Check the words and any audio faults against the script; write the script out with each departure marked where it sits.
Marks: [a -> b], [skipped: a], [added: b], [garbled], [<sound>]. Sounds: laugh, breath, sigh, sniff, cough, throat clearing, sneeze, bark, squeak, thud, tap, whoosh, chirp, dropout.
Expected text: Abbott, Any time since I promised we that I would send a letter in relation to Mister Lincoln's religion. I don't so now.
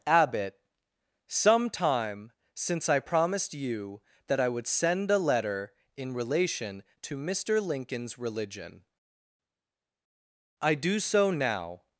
Abbott, [Any -> Some] time since I promised [we -> you] that I would send a letter in relation to Mister Lincoln's religion. I [don't -> do] so now.